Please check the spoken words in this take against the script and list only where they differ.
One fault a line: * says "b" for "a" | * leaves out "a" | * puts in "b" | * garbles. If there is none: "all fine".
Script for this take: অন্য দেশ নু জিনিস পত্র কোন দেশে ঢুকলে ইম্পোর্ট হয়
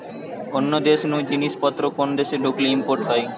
all fine